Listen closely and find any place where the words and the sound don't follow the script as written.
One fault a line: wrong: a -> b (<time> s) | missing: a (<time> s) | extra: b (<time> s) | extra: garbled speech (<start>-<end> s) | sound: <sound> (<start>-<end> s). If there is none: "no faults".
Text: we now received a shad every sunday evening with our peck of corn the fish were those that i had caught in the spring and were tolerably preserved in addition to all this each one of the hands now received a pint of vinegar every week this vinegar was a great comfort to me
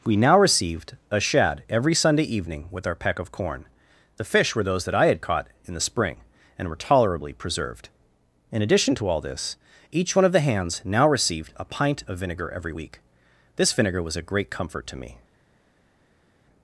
no faults